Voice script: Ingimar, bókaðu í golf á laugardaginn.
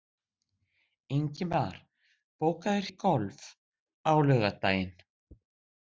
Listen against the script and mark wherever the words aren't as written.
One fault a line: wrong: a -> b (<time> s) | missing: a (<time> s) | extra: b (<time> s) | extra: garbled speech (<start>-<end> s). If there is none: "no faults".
no faults